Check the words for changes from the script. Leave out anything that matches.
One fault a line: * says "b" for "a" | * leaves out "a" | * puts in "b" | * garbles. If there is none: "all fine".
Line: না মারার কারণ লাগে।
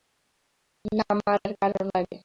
all fine